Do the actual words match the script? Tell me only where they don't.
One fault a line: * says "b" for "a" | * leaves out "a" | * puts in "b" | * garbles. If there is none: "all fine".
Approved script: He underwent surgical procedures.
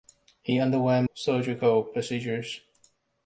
all fine